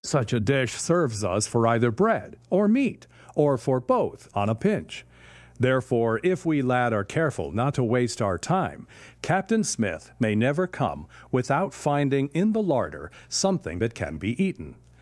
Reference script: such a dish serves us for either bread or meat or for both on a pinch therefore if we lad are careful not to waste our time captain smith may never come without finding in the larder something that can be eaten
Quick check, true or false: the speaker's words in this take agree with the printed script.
true